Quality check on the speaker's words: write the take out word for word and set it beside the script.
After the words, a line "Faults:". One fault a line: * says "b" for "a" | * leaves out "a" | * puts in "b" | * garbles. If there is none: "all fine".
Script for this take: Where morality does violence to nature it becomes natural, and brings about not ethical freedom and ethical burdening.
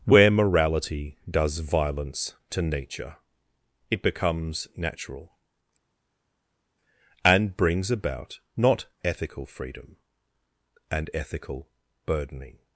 Where morality does violence to nature it becomes natural, and brings about not ethical freedom and ethical burdening.
Faults:
all fine